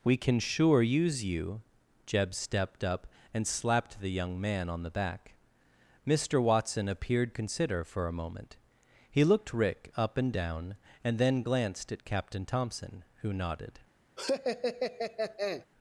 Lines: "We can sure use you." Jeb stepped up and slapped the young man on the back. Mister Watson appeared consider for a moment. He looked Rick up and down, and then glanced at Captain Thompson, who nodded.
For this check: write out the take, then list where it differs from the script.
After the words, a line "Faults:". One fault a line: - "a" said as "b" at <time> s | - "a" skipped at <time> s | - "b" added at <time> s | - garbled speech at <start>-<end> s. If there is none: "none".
"We can sure use you." Jeb stepped up and slapped the young man on the back. Mister Watson appeared consider for a moment. He looked Rick up and down, and then glanced at Captain Thompson, who nodded.
Faults:
none